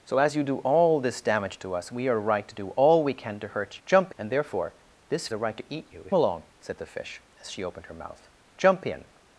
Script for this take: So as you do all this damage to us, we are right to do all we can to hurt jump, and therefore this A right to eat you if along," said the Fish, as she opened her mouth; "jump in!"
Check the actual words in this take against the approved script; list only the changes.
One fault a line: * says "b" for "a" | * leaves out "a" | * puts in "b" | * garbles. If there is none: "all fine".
all fine